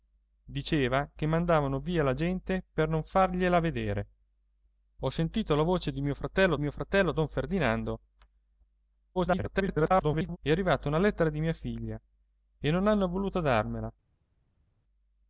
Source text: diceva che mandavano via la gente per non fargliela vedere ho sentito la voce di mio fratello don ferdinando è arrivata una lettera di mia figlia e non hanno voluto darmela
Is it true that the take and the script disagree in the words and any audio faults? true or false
true